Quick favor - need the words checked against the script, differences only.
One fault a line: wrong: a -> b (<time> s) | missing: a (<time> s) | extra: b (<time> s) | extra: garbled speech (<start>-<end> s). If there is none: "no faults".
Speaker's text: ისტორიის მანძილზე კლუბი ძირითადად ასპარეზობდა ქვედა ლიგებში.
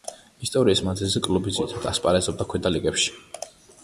no faults